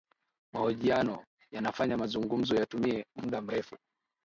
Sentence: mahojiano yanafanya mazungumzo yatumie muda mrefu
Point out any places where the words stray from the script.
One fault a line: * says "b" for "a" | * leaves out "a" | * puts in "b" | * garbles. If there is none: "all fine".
all fine